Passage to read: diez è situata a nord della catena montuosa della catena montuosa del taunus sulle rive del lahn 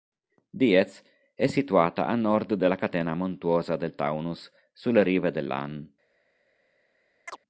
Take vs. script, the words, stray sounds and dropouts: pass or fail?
fail